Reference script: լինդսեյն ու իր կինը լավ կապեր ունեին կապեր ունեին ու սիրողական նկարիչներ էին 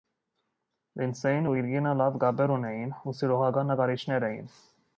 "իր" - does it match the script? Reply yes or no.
yes